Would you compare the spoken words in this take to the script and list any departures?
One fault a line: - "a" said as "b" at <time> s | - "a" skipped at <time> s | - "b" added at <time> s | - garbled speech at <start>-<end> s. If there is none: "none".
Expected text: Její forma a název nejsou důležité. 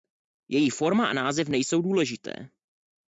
none